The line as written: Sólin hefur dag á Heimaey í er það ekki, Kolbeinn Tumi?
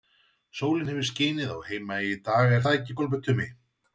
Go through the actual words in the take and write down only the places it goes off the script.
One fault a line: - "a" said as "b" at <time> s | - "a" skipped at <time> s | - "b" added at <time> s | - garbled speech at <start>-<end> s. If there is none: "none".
- "dag" said as "skinið" at 1.1 s
- "dag" added at 2.3 s